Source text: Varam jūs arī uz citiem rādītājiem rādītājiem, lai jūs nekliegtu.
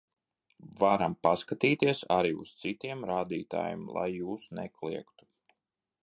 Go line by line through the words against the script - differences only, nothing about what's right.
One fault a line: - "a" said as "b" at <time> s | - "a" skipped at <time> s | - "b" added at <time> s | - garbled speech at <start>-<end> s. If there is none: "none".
- "jūs" said as "paskatīties" at 1.2 s
- "rādītājiem" skipped at 3.8 s